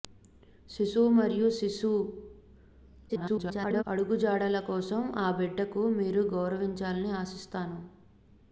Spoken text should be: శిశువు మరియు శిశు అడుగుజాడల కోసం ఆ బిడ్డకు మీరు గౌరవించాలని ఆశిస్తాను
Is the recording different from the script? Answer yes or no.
yes